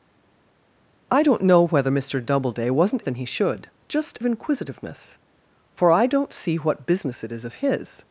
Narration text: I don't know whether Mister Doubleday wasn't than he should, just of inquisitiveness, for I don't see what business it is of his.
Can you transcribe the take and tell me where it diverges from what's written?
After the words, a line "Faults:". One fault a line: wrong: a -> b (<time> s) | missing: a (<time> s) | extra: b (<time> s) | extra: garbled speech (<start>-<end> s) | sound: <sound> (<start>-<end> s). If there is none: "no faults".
I don't know whether Mister Doubleday wasn't than he should, just of inquisitiveness, for I don't see what business it is of his.
Faults:
no faults